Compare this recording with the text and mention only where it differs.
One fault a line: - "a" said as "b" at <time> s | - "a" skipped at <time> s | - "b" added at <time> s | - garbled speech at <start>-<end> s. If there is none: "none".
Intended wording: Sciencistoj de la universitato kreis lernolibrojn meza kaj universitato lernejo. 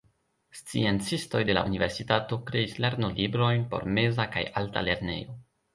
- "por" added at 3.7 s
- "universitato" said as "alta" at 4.6 s